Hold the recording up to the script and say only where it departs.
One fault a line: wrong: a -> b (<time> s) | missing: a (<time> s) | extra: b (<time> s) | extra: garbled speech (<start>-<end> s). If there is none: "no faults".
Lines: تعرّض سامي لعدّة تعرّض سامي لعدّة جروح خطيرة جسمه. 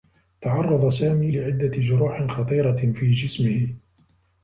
missing: تعرّض سامي لعدّة (1.8 s)
extra: في (2.9 s)